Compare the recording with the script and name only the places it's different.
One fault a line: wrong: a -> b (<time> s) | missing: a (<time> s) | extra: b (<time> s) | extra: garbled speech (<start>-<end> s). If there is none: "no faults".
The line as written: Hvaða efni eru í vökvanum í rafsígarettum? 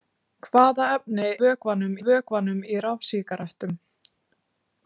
wrong: eru -> vökvanum (1.4 s)